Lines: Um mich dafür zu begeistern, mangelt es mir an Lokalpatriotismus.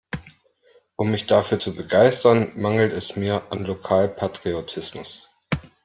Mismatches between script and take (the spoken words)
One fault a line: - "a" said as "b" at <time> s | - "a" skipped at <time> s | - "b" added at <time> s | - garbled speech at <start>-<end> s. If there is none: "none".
none